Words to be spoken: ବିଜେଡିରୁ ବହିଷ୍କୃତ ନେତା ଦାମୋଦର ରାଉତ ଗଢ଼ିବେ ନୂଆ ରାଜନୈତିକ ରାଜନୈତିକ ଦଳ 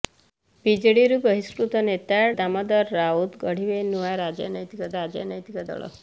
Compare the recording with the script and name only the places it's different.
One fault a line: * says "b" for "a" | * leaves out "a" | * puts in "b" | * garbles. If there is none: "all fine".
all fine